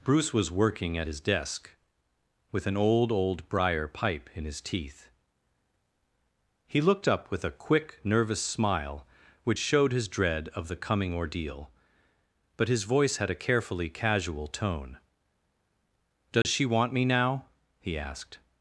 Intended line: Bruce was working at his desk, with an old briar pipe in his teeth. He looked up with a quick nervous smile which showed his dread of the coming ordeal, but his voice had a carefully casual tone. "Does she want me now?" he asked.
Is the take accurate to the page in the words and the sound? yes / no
no